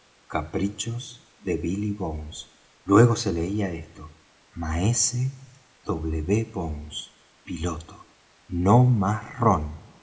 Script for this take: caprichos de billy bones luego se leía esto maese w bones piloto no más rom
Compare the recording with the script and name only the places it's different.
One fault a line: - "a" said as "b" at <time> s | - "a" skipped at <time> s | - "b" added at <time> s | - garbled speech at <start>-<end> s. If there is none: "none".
none